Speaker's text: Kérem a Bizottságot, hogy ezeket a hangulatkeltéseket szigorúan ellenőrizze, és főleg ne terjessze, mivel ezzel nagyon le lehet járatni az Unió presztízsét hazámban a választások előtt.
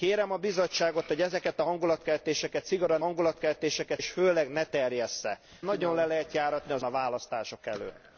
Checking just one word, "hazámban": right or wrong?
wrong